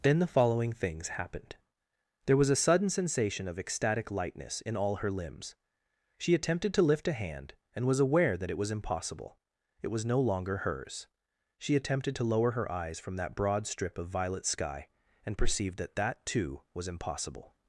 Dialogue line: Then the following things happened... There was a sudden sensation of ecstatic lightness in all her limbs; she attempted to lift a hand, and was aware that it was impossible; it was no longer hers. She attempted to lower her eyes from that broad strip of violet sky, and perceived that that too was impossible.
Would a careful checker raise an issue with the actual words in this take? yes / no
no